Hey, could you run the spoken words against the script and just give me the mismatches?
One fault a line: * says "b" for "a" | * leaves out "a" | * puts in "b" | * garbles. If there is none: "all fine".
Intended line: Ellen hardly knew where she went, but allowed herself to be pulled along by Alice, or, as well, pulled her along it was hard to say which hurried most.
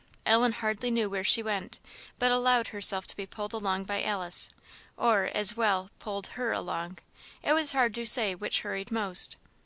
all fine